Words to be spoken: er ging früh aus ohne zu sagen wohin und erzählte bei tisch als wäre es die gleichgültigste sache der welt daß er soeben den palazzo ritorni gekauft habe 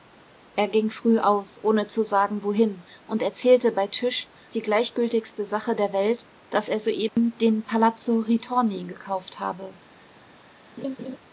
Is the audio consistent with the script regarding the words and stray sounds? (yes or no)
no